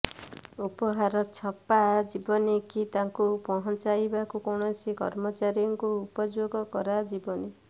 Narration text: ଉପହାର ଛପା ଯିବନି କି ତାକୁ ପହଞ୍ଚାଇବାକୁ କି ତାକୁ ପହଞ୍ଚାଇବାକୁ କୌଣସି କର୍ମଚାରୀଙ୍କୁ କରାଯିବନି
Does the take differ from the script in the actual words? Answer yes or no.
yes